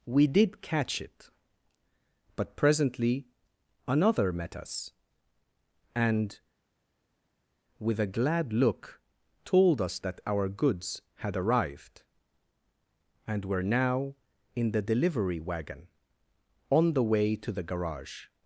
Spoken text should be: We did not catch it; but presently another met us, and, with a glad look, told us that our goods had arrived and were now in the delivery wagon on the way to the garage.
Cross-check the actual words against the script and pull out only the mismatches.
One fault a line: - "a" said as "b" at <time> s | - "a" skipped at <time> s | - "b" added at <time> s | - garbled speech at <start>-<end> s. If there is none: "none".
- "not" skipped at 0.6 s